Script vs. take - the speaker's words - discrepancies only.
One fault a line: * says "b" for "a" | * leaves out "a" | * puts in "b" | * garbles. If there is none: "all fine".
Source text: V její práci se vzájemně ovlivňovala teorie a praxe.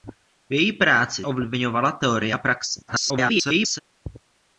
* leaves out "se vzájemně"
* garbles